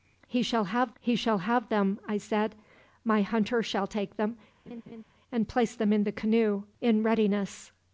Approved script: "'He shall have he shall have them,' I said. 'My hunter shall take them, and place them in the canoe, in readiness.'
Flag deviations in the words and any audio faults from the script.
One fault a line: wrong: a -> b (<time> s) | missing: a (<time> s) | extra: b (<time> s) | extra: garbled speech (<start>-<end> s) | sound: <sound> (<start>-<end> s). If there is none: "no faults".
sound: laugh (4.7-5.0 s)